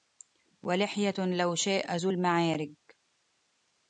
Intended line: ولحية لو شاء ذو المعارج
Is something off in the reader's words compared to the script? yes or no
no